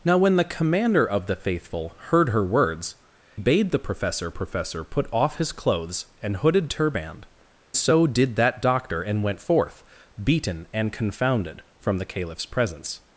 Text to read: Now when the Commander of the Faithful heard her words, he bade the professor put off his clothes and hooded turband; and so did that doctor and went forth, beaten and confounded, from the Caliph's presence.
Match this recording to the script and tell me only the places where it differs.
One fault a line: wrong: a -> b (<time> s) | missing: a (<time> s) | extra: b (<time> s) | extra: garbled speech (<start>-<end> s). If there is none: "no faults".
missing: he (3.0 s)
extra: professor (4.3 s)
missing: and (7.2 s)